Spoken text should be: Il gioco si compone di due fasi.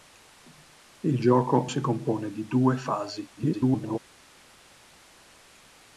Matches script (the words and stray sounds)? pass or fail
fail